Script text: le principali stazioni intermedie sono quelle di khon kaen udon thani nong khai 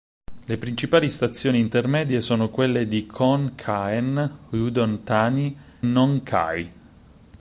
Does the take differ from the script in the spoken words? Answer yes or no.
no